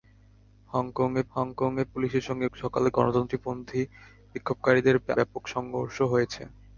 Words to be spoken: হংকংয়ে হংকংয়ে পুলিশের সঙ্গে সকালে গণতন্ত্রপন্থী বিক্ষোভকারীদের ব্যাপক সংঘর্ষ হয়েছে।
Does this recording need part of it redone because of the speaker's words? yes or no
no